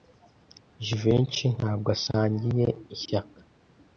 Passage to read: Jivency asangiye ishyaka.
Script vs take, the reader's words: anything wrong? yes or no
yes